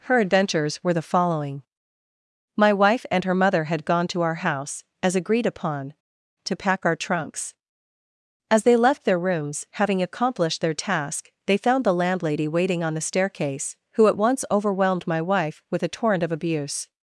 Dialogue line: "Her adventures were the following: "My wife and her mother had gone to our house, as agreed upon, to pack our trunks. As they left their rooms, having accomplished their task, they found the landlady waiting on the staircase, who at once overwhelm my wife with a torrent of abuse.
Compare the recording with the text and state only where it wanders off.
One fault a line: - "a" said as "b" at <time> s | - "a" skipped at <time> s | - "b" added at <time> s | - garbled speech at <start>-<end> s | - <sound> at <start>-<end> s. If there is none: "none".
- "overwhelm" said as "overwhelmed" at 14.5 s